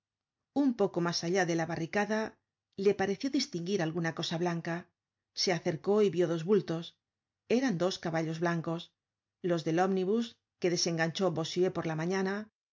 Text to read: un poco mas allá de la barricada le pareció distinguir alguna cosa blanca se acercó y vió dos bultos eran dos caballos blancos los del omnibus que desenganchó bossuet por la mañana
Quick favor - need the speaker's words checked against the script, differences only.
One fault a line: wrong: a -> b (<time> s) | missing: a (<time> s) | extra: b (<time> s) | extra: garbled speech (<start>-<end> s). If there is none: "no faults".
no faults